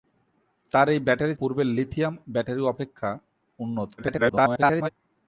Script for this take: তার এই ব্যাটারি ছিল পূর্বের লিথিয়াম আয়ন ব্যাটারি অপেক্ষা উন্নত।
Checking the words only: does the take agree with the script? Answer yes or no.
no